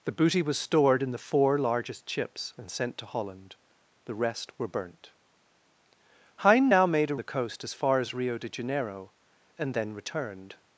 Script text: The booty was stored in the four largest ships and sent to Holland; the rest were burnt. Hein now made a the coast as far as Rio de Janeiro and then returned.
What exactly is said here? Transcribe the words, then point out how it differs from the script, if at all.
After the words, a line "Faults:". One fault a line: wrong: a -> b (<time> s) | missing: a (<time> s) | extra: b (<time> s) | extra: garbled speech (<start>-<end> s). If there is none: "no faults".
The booty was stored in the four largest ships and sent to Holland; the rest were burnt. Hein now made a the coast as far as Rio de Janeiro and then returned.
Faults:
no faults